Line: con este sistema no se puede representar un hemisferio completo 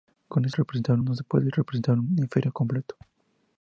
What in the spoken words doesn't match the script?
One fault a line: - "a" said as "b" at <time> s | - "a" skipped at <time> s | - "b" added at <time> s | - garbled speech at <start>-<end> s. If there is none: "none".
- "sistema" said as "representar" at 0.5 s